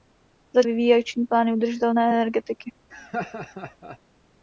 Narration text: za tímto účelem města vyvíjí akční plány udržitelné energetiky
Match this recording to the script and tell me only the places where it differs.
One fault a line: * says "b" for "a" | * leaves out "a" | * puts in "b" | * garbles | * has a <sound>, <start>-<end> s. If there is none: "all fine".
* leaves out "tímto účelem města"
* has a laugh, 2.9-4.0 s